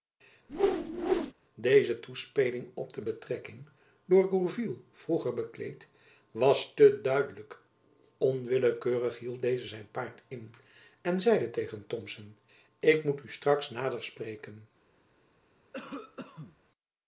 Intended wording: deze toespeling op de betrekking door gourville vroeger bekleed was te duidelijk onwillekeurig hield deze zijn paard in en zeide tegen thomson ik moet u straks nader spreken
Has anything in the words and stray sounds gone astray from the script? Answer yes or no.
yes